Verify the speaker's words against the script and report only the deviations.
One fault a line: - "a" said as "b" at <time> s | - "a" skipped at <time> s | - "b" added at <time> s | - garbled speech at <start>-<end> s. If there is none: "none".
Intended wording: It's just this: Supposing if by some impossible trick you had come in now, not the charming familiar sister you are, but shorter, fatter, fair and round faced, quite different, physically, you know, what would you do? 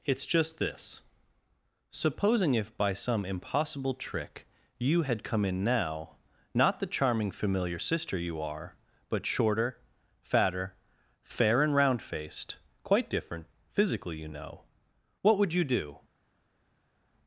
none